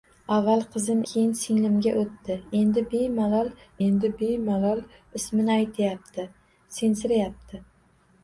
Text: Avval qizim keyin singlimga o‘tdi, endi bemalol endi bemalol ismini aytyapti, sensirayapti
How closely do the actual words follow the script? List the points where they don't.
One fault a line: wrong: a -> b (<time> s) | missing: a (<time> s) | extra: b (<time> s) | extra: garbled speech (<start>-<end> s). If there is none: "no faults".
no faults